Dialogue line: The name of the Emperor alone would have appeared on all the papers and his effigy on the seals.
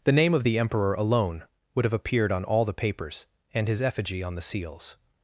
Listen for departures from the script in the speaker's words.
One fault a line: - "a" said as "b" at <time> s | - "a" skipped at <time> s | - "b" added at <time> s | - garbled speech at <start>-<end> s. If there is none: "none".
none